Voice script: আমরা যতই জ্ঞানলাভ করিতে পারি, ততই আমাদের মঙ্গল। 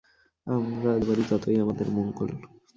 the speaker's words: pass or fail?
fail